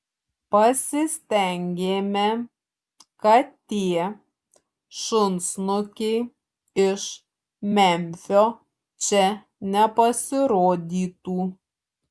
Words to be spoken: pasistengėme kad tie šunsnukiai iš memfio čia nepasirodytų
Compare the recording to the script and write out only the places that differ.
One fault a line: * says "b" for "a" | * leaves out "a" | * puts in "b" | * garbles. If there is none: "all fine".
all fine